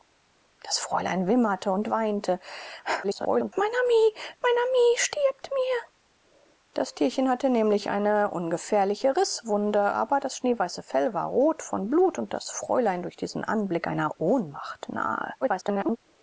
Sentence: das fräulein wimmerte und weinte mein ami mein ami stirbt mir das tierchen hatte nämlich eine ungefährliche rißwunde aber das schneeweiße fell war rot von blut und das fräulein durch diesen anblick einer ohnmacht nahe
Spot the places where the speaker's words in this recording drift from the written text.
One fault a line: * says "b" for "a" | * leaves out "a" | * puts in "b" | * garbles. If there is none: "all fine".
* garbles
* garbles